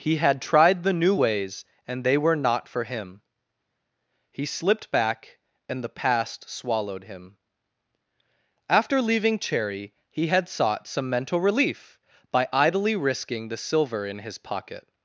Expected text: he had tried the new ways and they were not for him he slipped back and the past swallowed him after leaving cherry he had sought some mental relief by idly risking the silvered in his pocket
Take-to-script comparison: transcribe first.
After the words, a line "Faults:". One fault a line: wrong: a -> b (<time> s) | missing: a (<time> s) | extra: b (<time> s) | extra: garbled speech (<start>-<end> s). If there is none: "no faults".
he had tried the new ways and they were not for him he slipped back and the past swallowed him after leaving cherry he had sought some mental relief by idly risking the silver in his pocket
Faults:
wrong: silvered -> silver (13.6 s)